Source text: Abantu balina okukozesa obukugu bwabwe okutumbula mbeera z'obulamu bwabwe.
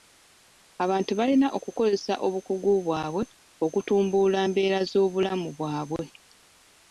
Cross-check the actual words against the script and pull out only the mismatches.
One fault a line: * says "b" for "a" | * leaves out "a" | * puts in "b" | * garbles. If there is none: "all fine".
all fine